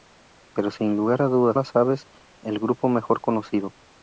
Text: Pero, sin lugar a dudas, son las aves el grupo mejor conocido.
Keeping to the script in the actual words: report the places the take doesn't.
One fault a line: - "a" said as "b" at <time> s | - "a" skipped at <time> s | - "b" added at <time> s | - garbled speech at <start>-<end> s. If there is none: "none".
- "son" skipped at 1.6 s